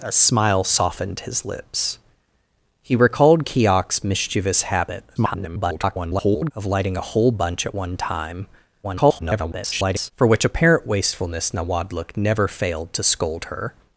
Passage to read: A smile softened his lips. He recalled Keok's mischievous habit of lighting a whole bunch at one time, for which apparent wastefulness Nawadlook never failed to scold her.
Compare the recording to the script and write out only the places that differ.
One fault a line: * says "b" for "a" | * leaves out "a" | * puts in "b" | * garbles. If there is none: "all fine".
* garbles
* garbles